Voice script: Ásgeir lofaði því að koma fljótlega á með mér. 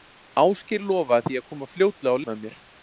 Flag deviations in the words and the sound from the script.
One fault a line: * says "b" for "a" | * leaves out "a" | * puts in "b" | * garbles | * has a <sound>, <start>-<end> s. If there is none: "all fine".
all fine